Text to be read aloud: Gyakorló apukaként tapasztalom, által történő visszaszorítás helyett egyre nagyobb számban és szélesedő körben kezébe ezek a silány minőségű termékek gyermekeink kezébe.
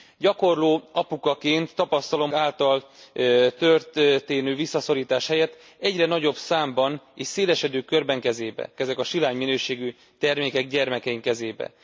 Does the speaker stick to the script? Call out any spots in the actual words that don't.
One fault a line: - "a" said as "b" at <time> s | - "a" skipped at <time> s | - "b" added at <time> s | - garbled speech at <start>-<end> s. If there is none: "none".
none